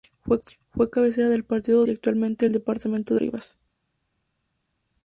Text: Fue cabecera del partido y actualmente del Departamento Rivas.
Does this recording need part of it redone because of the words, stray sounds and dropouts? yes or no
no